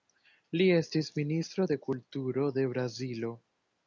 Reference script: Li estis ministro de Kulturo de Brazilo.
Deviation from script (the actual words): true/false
false